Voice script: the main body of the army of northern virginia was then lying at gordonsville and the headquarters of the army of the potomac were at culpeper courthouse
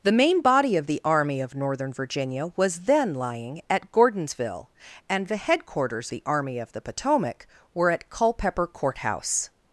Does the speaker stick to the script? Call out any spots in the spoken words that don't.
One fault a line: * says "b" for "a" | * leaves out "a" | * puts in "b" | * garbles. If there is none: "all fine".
* leaves out "of"